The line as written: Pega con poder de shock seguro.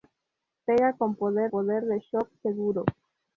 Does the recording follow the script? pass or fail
fail